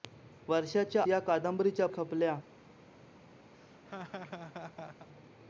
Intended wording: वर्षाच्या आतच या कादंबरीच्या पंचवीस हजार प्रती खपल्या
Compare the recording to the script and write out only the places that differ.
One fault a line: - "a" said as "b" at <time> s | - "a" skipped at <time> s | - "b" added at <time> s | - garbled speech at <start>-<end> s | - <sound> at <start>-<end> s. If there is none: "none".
- "आतच" skipped at 1.0 s
- "पंचवीस हजार प्रती" skipped at 1.9 s
- laugh at 3.5-5.1 s